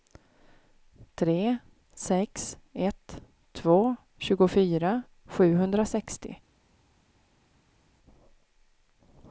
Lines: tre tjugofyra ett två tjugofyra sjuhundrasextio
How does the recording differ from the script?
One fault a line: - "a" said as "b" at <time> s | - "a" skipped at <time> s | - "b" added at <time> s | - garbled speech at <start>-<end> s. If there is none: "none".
- "tjugofyra" said as "sex" at 1.9 s